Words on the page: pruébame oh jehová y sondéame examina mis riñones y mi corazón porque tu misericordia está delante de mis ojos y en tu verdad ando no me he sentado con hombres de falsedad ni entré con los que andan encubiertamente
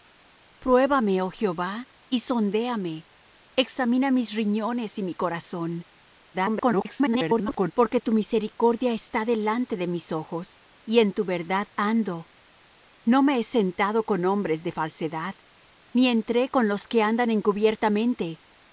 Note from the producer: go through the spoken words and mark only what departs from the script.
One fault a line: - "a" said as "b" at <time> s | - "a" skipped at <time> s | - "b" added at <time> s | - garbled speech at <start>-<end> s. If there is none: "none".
- garbled speech at 6.3-7.7 s